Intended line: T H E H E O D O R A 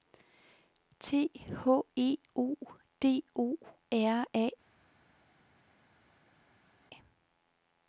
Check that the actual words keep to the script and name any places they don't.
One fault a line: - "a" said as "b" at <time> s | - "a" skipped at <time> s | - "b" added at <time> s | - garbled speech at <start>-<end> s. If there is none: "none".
- "H E" skipped at 2.2 s